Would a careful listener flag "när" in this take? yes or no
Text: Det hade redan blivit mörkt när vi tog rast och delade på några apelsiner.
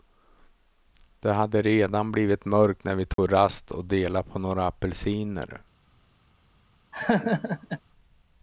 no